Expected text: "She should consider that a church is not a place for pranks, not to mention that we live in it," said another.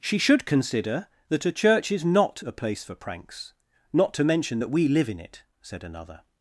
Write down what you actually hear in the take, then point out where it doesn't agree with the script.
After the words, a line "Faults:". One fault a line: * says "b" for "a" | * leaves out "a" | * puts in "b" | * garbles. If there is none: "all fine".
"She should consider that a church is not a place for pranks, not to mention that we live in it," said another.
Faults:
all fine